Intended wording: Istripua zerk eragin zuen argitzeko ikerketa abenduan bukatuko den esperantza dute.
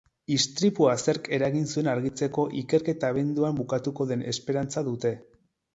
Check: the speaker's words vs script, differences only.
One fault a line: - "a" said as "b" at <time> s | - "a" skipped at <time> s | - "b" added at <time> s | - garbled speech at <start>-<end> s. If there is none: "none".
none